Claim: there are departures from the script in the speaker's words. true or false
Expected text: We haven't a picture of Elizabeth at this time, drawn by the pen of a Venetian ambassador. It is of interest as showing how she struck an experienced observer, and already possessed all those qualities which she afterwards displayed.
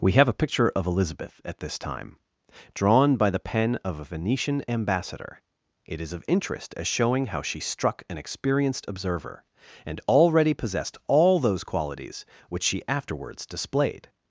true